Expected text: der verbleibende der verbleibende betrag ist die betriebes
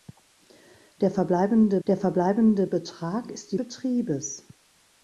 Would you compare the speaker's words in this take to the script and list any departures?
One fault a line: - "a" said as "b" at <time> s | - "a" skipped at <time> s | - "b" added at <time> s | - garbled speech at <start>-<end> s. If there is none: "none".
none